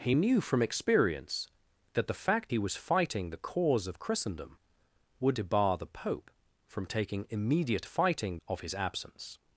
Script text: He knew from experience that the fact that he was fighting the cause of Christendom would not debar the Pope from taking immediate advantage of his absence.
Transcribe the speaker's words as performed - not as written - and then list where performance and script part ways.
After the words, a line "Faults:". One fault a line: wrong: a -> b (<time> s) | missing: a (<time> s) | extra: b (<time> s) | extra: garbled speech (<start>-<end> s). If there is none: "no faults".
He knew from experience that the fact he was fighting the cause of Christendom would debar the Pope from taking immediate fighting of his absence.
Faults:
missing: that (2.5 s)
missing: not (5.4 s)
wrong: advantage -> fighting (7.8 s)